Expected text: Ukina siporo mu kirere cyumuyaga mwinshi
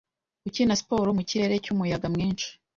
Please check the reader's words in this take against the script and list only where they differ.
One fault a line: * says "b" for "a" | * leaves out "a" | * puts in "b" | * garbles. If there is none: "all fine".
all fine